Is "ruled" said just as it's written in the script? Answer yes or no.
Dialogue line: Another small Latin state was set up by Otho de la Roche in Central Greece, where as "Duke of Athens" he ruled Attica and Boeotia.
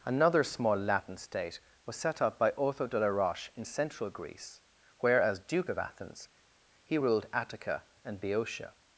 yes